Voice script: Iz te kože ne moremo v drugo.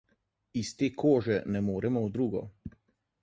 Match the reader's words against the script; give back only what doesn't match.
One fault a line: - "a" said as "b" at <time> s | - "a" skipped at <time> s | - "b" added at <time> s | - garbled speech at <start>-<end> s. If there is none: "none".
none